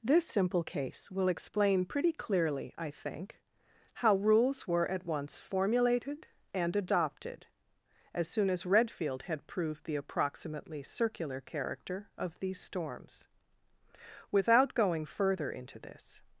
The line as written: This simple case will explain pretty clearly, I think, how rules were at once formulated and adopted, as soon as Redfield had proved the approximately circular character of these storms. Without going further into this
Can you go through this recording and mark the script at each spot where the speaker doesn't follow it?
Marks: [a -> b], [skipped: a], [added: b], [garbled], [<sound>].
This simple case will explain pretty clearly, I think, how rules were at once formulated and adopted, as soon as Redfield had proved the approximately circular character of these storms. Without going further into this